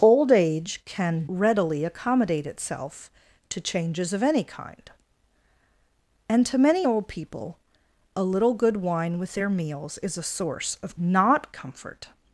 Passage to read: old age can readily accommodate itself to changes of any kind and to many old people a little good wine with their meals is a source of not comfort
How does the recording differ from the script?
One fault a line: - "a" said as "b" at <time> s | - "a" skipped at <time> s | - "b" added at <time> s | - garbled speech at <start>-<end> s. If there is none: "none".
none